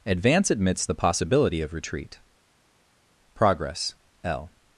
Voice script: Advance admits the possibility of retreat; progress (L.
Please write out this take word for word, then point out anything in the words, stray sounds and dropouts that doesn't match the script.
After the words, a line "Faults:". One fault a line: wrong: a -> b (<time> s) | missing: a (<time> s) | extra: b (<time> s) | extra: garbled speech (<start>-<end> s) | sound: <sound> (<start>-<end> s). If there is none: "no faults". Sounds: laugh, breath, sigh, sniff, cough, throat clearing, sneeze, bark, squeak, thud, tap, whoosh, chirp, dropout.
Advance admits the possibility of retreat; progress (L.
Faults:
no faults